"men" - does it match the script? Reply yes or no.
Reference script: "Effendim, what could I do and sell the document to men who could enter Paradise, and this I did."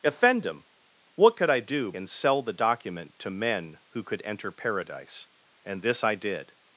yes